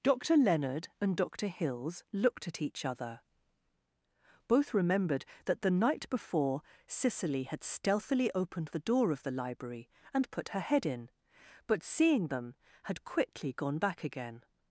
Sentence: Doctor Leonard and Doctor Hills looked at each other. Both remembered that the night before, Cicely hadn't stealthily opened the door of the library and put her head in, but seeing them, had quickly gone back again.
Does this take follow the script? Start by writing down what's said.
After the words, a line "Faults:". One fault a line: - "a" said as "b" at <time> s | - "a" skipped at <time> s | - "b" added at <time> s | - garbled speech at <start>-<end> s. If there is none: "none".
Doctor Leonard and Doctor Hills looked at each other. Both remembered that the night before, Cicely had stealthily opened the door of the library and put her head in, but seeing them, had quickly gone back again.
Faults:
- "hadn't" said as "had" at 7.4 s